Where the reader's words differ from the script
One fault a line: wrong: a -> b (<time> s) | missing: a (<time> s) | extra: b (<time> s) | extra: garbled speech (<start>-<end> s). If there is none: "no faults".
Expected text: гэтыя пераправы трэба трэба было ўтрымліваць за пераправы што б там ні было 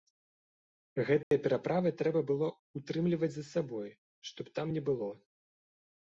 missing: трэба (2.2 s)
wrong: пераправы -> сабой (3.5 s)